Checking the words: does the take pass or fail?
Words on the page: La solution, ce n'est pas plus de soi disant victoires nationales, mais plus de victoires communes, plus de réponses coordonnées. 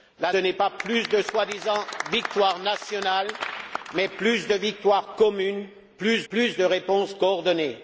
fail